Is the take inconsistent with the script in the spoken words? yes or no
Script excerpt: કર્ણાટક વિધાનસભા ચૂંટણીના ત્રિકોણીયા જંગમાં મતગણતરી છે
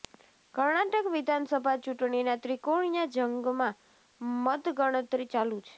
yes